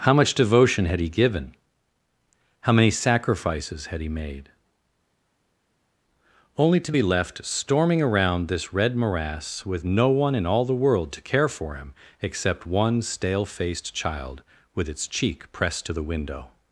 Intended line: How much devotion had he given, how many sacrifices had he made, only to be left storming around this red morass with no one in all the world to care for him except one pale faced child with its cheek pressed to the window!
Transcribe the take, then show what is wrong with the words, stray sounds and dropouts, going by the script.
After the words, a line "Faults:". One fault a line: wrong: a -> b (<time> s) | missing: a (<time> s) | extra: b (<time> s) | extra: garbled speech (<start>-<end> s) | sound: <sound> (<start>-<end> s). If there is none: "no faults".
How much devotion had he given, how many sacrifices had he made, only to be left storming around this red morass with no one in all the world to care for him except one stale faced child with its cheek pressed to the window!
Faults:
wrong: pale -> stale (13.0 s)